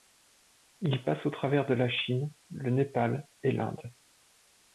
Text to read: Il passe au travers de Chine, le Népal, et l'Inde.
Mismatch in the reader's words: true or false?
true